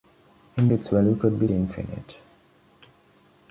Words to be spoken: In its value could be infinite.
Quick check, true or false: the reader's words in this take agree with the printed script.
true